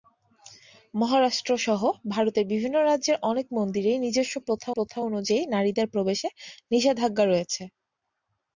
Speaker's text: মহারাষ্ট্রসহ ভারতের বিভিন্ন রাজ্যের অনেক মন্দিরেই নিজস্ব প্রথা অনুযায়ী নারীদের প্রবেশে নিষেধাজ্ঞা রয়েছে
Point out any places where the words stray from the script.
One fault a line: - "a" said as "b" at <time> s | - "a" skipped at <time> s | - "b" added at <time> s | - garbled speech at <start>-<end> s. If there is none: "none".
- "প্রথা" added at 4.8 s